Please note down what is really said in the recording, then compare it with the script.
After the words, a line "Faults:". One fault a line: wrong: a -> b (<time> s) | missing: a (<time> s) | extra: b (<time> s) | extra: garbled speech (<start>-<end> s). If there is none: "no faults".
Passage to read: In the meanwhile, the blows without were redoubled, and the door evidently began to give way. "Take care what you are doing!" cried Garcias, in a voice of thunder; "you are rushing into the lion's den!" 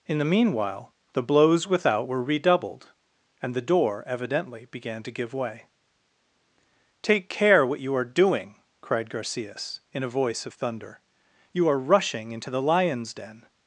In the meanwhile, the blows without were redoubled, and the door evidently began to give way. "Take care what you are doing!" cried Garcias, in a voice of thunder; "you are rushing into the lion's den!"
Faults:
no faults